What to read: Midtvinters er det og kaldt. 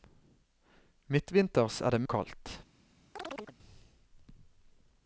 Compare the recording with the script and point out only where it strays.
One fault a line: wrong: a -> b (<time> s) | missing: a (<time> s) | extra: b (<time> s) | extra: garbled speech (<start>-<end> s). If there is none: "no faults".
no faults